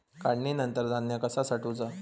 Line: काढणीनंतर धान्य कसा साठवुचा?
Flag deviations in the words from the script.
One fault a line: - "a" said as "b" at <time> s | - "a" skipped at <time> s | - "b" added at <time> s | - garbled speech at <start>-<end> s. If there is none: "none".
none